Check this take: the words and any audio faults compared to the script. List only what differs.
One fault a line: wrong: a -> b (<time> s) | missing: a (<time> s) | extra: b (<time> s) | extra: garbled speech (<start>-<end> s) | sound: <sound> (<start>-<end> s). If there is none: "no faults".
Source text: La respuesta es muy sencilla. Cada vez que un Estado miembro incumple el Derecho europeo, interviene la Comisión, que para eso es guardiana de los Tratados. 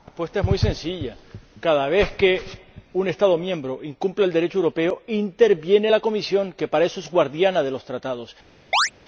sound: chirp (8.7-8.9 s)